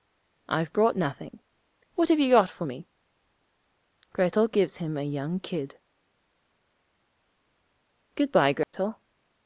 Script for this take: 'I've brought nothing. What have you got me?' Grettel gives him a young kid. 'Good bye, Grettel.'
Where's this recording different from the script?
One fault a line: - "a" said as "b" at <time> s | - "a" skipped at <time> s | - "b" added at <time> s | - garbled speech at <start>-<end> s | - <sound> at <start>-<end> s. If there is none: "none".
- "for" added at 2.5 s
- dropout at 8.6-8.7 s